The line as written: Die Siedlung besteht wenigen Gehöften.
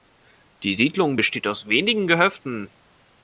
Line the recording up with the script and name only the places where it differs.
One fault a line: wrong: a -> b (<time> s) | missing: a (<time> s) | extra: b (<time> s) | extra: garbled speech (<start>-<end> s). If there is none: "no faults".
extra: aus (1.5 s)